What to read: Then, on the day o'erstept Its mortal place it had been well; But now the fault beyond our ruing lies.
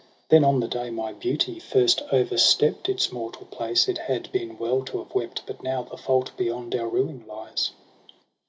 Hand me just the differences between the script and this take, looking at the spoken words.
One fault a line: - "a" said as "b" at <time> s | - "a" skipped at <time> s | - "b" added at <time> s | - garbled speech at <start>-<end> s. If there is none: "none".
- "my beauty first" added at 0.9 s
- "to have wept" added at 4.8 s